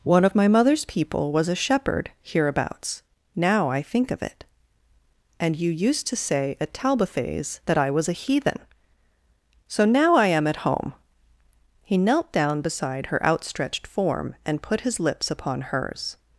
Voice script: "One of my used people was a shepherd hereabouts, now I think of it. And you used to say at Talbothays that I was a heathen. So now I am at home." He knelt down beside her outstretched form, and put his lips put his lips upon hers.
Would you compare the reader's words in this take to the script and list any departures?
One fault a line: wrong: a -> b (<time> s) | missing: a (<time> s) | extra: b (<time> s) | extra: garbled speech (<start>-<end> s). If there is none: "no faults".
wrong: used -> mother's (0.5 s)
missing: put his lips (15.3 s)